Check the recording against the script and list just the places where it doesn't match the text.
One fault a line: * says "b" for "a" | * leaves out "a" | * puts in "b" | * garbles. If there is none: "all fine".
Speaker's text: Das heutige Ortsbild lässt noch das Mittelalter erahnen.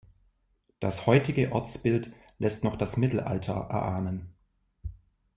all fine